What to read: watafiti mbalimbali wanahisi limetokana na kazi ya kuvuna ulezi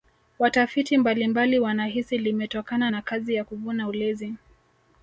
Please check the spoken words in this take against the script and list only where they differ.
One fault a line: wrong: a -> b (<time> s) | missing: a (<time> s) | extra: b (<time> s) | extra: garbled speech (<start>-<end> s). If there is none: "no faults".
no faults